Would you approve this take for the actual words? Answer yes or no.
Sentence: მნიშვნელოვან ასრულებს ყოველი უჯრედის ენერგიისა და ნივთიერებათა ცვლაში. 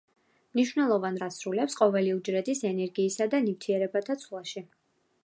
yes